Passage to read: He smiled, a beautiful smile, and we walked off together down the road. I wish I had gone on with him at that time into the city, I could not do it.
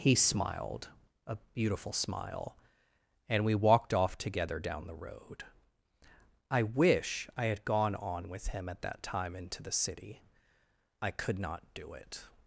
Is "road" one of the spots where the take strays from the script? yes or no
no